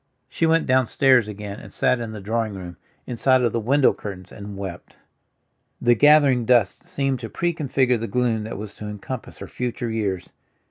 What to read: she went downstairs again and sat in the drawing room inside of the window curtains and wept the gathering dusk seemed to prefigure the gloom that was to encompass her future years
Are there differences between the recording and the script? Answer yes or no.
no